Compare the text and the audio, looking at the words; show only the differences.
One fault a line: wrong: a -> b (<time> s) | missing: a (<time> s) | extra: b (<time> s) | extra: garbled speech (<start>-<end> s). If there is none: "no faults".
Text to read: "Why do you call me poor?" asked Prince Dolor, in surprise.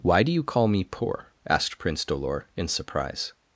no faults